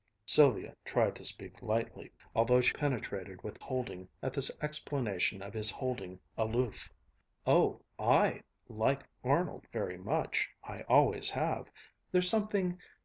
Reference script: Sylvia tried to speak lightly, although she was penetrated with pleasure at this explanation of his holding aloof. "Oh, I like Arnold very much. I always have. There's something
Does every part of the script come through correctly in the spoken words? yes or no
no